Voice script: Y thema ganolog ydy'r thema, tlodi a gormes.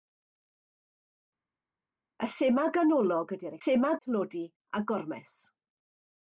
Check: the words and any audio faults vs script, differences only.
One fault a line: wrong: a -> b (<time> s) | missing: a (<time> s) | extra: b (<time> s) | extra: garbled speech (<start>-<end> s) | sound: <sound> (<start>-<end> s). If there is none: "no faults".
no faults